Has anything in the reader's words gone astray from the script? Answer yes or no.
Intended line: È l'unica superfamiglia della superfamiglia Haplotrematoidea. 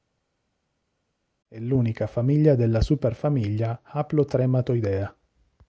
yes